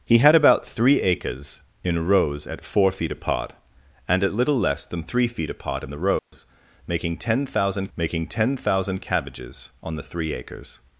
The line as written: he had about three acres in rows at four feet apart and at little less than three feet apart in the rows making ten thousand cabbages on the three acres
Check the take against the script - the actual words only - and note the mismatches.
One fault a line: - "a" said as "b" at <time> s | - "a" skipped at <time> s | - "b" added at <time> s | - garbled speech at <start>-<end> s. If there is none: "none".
- "making ten thousand" added at 8.0 s